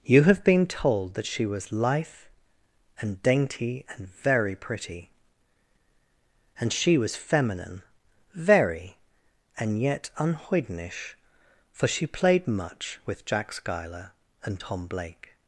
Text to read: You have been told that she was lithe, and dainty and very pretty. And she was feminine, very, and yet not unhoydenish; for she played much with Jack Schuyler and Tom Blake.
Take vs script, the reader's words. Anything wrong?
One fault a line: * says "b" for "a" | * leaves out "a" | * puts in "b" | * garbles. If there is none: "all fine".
* leaves out "not"